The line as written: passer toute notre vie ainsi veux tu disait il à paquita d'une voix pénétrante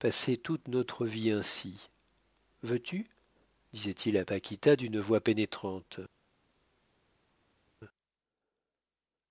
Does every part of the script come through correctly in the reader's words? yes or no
yes